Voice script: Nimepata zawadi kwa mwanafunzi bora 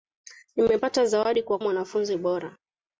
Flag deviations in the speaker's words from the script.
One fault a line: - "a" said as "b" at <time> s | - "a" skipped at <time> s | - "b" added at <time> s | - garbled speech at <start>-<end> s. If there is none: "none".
none